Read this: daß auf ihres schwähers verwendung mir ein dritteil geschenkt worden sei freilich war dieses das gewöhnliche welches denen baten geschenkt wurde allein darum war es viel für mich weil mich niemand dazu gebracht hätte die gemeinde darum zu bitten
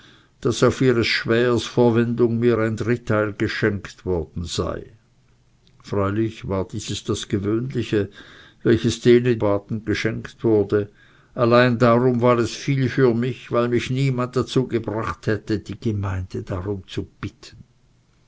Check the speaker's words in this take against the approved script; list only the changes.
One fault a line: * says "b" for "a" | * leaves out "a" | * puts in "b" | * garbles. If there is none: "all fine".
all fine